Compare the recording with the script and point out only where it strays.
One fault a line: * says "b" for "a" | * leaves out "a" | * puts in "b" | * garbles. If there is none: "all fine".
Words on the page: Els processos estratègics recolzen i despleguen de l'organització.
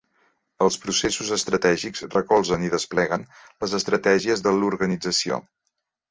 * puts in "les estratègies"